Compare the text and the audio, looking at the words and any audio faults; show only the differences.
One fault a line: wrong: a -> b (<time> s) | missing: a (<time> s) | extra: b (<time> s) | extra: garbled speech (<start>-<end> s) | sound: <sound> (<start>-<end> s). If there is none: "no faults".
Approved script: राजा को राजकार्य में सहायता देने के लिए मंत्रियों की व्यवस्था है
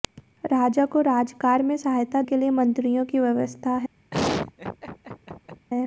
missing: देने (2.2 s)
sound: laugh (4.1-5.7 s)